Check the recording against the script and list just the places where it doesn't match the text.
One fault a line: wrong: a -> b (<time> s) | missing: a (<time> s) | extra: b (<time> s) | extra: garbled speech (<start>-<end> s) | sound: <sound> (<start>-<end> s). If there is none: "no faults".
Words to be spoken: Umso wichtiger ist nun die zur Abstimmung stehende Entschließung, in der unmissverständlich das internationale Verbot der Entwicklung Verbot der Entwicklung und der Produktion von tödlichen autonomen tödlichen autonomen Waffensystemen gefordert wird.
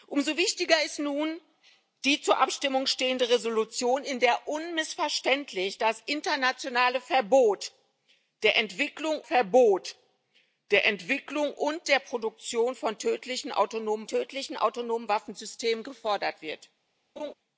sound: laugh (17.2-17.3 s)